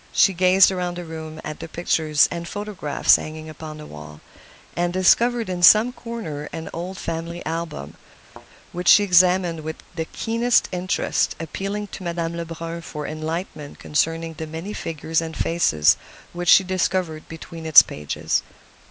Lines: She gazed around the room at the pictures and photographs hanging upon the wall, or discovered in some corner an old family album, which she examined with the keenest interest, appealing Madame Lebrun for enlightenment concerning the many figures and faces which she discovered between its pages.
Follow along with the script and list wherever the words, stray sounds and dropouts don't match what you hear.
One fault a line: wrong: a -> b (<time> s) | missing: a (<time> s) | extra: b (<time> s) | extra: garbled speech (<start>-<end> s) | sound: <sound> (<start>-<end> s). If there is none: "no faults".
wrong: or -> and (4.7 s)
sound: thud (8.2-8.5 s)
extra: to (11.9 s)